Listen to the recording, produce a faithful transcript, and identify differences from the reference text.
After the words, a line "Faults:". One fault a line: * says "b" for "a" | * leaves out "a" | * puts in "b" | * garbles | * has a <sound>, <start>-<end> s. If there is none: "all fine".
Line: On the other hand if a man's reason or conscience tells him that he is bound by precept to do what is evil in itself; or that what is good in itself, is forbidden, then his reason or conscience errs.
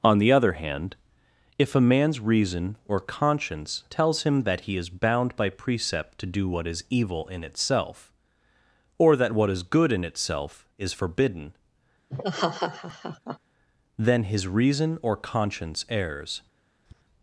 On the other hand if a man's reason or conscience tells him that he is bound by precept to do what is evil in itself; or that what is good in itself, is forbidden, then his reason or conscience errs.
Faults:
* has a laugh, 12.1-13.4 s
* has a tap, 16.9-17.0 s